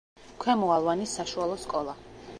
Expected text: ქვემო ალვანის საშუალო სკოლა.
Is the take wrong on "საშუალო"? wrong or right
right